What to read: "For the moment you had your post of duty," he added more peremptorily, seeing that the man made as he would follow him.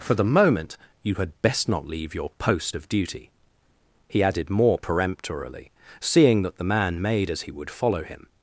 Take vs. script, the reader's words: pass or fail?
fail